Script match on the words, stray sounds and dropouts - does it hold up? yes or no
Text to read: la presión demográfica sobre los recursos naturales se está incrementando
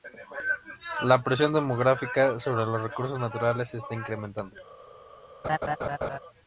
no